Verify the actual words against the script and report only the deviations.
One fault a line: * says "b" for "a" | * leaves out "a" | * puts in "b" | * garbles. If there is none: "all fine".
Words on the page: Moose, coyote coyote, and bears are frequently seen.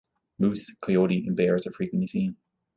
* leaves out "coyote"